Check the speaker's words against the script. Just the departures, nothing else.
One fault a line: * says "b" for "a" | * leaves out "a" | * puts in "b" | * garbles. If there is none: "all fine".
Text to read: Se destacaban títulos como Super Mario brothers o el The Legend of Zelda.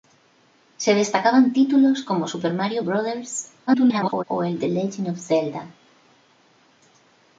* garbles